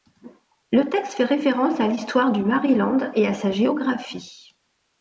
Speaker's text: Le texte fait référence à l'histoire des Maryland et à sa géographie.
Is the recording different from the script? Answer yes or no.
yes